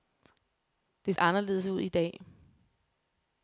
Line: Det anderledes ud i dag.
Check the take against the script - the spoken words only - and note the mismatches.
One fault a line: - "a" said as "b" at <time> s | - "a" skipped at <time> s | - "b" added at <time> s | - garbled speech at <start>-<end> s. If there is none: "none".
none